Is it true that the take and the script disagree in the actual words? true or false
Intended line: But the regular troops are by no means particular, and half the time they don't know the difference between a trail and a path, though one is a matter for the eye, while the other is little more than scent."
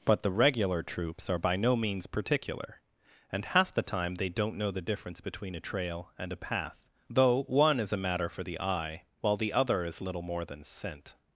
false